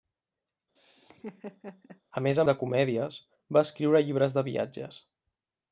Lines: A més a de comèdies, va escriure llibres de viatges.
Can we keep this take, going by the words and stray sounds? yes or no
no